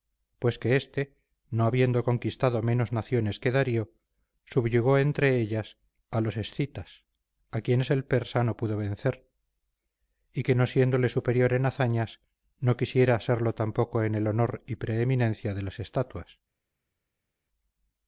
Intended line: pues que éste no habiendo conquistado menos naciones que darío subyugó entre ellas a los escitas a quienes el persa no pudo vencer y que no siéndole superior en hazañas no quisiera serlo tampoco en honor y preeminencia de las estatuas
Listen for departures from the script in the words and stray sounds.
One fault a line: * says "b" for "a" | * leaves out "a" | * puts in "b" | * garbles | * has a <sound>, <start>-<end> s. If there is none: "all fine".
* puts in "el"